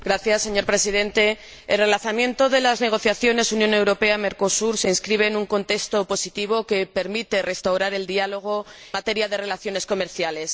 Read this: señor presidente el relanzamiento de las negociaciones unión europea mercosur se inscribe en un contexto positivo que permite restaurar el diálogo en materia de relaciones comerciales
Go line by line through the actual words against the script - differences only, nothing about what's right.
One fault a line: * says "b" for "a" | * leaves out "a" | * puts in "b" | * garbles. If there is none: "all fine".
* leaves out "en"